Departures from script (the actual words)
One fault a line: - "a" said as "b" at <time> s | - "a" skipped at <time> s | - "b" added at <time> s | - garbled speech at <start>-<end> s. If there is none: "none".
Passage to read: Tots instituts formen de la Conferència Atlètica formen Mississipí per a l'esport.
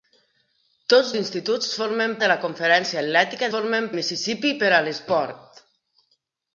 none